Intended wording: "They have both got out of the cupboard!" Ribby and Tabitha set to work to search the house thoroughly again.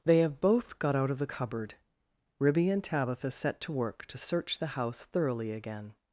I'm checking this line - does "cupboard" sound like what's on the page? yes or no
yes